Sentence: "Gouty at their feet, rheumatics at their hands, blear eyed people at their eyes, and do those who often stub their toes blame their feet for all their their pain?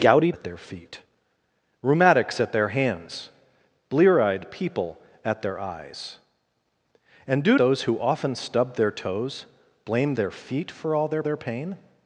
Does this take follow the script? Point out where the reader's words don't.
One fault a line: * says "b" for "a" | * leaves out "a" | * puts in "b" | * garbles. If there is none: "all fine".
all fine